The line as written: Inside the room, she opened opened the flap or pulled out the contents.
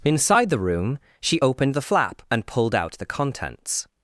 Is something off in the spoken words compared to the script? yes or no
yes